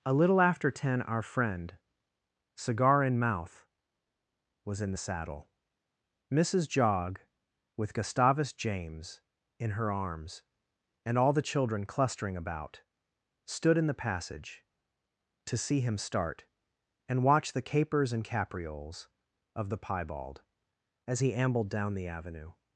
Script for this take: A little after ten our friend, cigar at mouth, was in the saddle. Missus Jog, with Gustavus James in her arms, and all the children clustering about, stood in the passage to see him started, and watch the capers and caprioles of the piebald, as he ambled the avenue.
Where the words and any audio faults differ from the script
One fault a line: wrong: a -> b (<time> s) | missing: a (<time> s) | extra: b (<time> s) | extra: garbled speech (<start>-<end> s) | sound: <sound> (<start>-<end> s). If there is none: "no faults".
wrong: at -> in (3.0 s)
wrong: started -> start (16.0 s)
extra: down (21.7 s)